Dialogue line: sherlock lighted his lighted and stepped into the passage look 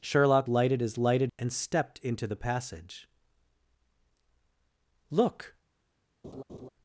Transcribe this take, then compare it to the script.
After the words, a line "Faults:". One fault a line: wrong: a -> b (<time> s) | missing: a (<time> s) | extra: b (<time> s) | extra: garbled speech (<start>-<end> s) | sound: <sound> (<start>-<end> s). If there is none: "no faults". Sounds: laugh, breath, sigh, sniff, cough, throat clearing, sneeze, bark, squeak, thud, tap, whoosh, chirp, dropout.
sherlock lighted his lighted and stepped into the passage look
Faults:
sound: laugh (6.2-6.7 s)